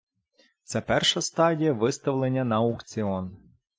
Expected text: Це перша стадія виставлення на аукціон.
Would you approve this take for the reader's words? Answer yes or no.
yes